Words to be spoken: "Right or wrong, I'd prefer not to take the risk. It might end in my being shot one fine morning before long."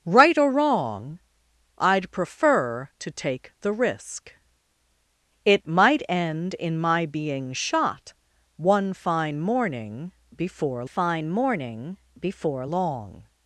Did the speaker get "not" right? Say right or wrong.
wrong